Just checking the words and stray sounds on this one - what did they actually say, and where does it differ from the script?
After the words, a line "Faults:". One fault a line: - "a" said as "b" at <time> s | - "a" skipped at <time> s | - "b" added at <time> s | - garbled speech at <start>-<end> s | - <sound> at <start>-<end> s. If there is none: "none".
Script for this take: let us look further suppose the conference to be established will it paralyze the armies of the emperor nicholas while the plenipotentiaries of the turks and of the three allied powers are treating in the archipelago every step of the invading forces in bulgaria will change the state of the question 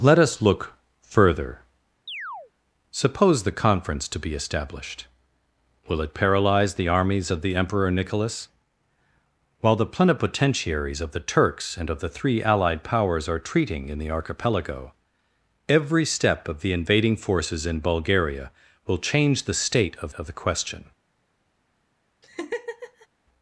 let us look further suppose the conference to be established will it paralyze the armies of the emperor nicholas while the plenipotentiaries of the turks and of the three allied powers are treating in the archipelago every step of the invading forces in bulgaria will change the state of of the question
Faults:
- chirp at 2.1-2.5 s
- "of" added at 20.2 s
- laugh at 22.2-23.1 s